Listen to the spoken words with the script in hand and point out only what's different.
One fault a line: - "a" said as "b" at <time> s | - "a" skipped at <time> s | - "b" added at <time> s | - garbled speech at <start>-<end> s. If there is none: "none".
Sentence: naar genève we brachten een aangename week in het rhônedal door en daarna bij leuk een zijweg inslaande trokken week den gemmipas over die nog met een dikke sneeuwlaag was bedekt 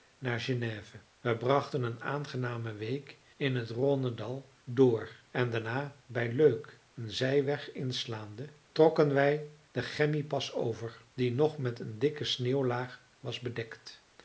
- "week" said as "wij" at 9.1 s